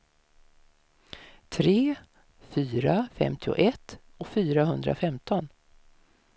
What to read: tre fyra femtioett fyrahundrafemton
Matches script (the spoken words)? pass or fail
pass